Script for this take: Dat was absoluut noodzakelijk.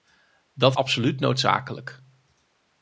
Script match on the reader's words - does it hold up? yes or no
no